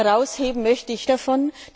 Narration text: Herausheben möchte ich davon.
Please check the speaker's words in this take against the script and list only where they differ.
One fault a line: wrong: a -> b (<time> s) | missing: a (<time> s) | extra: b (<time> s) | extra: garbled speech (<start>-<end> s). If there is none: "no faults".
no faults